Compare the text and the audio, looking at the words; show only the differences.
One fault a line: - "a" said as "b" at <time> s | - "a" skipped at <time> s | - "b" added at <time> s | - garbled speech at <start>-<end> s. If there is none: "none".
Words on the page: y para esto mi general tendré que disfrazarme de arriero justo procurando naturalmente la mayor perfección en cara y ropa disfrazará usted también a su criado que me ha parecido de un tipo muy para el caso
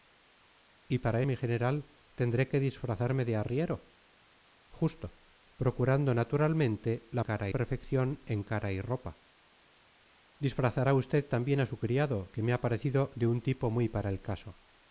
- "esto" skipped at 1.2 s
- "mayor" said as "cara" at 7.2 s